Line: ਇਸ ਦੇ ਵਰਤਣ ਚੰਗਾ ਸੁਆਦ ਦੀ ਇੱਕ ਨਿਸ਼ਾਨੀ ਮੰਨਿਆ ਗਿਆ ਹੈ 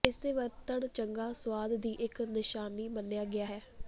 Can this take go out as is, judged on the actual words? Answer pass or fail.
pass